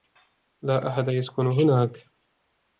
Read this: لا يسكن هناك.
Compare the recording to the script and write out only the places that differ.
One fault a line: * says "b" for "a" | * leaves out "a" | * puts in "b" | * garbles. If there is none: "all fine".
* puts in "أحد"